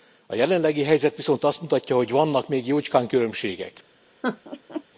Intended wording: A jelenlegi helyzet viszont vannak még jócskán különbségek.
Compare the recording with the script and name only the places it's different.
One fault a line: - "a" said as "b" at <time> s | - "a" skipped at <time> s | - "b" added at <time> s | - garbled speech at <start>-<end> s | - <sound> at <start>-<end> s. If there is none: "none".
- "azt mutatja hogy" added at 1.4 s
- laugh at 4.2-4.8 s